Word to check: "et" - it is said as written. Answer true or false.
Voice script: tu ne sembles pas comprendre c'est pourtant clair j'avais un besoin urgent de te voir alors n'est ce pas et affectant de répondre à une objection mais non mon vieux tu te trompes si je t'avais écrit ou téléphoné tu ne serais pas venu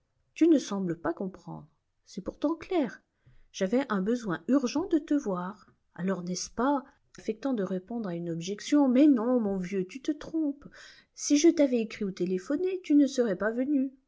false